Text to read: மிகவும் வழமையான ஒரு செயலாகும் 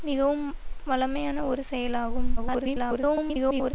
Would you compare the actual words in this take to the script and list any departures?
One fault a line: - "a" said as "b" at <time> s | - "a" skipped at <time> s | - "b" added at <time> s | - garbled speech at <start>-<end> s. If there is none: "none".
- garbled speech at 2.4-3.7 s